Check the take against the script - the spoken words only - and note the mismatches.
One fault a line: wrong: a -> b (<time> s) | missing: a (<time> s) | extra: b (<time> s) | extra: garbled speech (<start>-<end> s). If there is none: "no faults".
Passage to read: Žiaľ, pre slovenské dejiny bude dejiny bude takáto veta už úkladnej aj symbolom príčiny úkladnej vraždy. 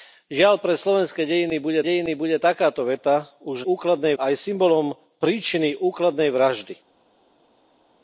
no faults